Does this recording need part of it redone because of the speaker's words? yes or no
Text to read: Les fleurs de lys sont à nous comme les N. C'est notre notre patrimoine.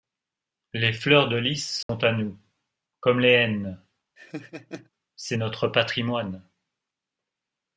yes